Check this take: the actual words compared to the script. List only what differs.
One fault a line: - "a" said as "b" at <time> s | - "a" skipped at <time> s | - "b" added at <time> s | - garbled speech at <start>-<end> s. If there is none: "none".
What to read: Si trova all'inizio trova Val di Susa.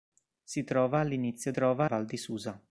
none